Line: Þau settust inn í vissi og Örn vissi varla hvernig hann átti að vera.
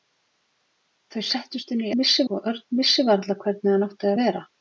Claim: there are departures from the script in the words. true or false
false